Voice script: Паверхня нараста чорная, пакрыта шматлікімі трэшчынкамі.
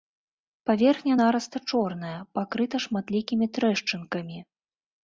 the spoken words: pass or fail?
pass